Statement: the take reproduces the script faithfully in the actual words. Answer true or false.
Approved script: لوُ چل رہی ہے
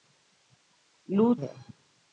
false